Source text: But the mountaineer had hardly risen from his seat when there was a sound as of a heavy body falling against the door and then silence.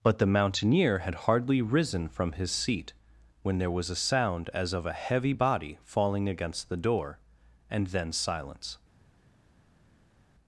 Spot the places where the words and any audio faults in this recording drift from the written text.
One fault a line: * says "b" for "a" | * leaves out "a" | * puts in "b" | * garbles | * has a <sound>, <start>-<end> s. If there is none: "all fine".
all fine